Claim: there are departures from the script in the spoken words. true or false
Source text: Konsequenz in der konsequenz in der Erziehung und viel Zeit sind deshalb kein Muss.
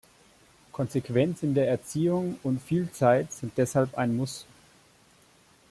true